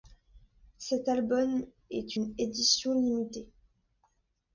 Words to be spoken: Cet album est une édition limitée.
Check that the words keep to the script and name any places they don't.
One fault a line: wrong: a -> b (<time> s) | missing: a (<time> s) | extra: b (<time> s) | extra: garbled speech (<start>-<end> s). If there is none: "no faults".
no faults